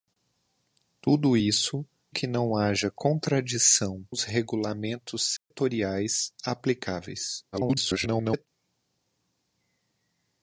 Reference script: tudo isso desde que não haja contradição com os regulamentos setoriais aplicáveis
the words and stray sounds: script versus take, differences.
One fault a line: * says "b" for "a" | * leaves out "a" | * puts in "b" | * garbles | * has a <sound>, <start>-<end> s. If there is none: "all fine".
* leaves out "desde"
* leaves out "com"
* has a dropout, 5.4-5.5 s
* garbles